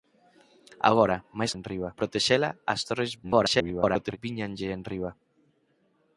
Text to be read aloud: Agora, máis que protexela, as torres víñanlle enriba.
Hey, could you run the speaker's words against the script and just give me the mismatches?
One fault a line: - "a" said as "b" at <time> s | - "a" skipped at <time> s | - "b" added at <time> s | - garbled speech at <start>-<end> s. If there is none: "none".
- "que" said as "enriba" at 1.6 s
- garbled speech at 3.2-4.2 s